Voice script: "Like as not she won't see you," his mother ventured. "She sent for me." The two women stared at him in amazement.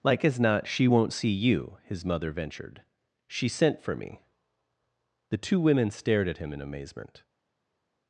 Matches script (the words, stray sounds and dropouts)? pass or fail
pass